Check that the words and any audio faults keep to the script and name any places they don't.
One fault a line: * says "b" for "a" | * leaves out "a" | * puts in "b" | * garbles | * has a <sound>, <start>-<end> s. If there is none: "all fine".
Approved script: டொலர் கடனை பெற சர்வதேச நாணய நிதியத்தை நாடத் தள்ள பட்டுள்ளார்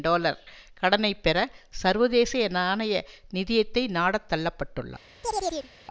* has a chirp, 5.2-5.7 s